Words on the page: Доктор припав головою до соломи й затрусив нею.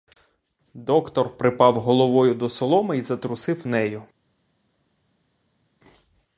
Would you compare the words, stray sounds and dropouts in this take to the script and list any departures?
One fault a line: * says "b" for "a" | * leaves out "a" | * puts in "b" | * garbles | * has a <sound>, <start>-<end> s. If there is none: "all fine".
all fine